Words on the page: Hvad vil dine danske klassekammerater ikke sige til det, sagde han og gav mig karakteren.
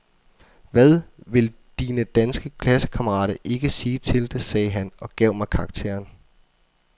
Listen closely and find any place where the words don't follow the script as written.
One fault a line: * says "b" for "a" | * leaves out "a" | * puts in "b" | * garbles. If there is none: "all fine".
all fine